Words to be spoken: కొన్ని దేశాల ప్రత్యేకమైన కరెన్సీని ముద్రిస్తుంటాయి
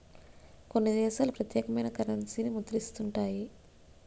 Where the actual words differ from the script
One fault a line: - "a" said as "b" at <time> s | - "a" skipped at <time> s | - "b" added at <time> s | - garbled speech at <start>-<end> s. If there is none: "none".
none